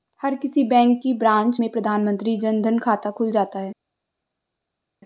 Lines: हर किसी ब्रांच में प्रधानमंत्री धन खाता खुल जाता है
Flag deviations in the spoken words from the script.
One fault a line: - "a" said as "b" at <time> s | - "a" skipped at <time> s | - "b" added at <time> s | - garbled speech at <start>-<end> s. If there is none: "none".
- "बैंक की" added at 0.6 s
- "जन" added at 2.4 s